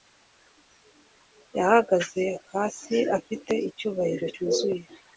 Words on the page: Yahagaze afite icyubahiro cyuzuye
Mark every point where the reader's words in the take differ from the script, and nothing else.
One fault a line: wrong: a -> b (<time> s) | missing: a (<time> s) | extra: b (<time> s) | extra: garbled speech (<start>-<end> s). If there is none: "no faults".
extra: hasi (2.5 s)